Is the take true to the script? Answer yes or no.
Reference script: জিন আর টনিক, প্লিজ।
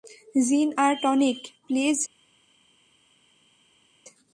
yes